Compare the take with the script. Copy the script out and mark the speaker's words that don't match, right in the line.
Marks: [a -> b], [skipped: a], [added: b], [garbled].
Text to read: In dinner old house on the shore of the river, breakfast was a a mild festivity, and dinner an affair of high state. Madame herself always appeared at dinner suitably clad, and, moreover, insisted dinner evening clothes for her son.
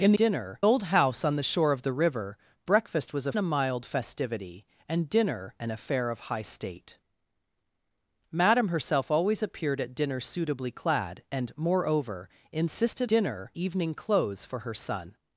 In dinner old house on the shore of the river, breakfast was a a mild festivity, and dinner an affair of high state. Madame herself always appeared at dinner suitably clad, and, moreover, insisted dinner evening clothes for her son.